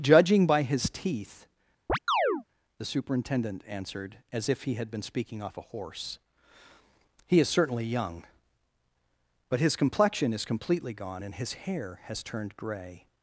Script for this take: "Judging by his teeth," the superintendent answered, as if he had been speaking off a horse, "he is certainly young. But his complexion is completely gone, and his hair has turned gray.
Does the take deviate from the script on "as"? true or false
false